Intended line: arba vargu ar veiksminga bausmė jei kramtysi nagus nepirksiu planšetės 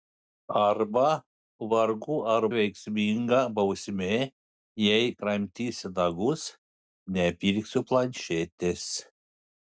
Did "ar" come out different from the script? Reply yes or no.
no